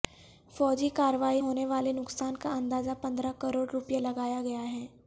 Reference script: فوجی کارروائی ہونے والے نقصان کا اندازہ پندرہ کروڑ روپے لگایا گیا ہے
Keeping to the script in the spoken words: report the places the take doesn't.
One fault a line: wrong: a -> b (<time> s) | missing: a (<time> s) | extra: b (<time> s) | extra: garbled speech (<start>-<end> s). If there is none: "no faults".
no faults